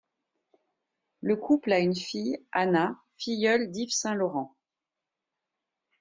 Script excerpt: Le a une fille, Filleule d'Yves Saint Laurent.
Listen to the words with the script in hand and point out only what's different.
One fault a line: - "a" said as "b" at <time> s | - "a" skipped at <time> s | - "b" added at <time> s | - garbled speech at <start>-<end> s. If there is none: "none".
- "couple" added at 1.4 s
- "Anna" added at 2.5 s